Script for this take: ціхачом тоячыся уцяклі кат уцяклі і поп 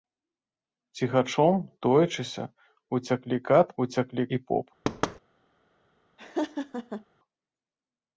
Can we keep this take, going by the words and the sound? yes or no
no